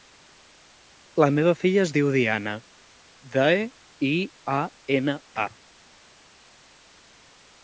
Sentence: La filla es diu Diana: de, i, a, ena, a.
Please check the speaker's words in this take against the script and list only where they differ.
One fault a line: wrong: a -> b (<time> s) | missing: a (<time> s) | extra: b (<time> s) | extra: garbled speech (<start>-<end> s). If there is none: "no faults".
extra: meva (1.4 s)